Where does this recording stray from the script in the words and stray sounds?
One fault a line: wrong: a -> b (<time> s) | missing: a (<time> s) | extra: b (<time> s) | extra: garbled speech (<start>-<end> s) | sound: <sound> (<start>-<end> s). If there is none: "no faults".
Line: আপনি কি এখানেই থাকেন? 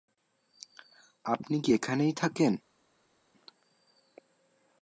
no faults